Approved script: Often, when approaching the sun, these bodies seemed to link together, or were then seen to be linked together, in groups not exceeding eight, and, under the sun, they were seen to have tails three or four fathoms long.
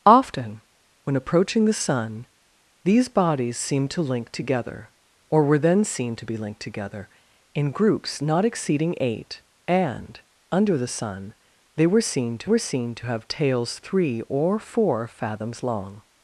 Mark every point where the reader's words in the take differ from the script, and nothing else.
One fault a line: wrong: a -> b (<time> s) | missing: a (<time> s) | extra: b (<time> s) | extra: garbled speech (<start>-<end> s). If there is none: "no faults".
extra: were seen to (12.4 s)